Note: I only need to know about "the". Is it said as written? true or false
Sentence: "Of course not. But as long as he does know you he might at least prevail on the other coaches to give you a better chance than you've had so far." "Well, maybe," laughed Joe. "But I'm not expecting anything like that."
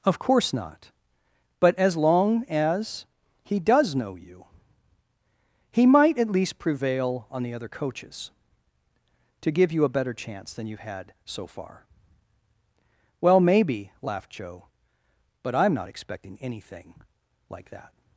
true